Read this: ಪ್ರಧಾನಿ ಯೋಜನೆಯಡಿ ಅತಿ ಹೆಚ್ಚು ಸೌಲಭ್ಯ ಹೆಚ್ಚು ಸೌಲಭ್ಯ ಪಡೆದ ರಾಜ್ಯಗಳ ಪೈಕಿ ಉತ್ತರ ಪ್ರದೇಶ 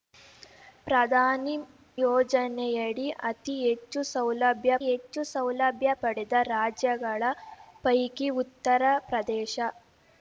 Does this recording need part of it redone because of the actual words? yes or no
no